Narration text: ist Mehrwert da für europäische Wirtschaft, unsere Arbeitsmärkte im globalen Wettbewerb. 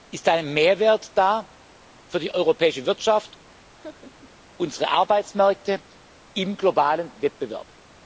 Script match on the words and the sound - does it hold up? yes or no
no